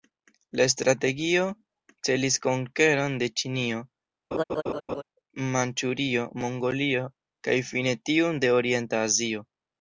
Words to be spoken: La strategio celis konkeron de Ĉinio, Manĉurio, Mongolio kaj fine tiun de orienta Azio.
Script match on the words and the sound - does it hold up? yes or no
no